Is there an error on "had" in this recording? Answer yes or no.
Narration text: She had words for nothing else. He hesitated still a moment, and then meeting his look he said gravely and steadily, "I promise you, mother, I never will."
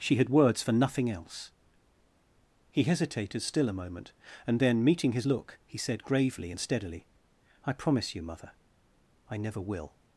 no